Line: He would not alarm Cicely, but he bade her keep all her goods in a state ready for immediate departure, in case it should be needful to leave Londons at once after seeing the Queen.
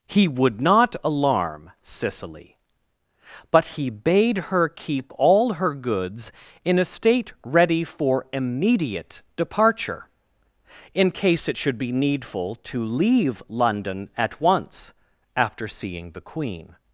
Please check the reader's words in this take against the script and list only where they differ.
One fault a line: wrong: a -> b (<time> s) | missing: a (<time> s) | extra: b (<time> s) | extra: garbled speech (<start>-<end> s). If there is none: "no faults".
wrong: Londons -> London (13.5 s)